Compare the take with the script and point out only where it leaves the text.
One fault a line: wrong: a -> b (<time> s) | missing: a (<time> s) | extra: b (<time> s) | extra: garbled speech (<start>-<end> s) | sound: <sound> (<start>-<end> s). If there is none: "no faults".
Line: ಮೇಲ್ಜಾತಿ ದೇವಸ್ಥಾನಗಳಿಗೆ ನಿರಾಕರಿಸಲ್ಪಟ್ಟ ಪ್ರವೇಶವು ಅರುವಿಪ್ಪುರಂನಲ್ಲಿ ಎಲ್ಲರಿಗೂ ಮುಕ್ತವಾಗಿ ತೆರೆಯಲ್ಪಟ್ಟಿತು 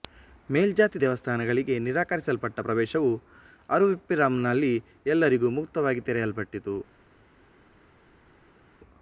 no faults